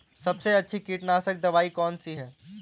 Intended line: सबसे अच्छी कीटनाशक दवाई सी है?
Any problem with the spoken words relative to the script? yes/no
yes